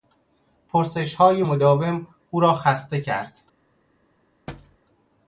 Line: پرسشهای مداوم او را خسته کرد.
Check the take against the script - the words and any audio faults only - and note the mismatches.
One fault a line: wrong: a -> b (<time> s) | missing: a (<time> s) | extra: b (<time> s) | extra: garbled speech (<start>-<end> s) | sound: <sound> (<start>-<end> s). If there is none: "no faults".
sound: thud (4.5-4.8 s)